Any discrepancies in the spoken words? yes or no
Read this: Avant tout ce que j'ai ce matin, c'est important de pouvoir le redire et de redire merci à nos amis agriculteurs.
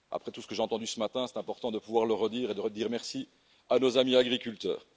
yes